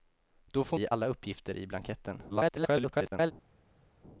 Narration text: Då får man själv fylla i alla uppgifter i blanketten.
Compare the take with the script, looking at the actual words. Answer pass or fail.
fail